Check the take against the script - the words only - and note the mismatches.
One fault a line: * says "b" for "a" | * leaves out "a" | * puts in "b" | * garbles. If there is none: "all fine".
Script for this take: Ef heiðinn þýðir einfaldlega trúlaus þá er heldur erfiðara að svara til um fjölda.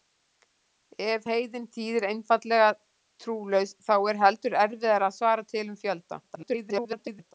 * garbles